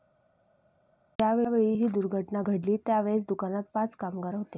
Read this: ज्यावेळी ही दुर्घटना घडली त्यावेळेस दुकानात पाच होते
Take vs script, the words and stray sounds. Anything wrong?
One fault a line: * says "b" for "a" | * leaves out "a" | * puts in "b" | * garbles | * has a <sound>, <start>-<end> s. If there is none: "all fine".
* puts in "कामगार"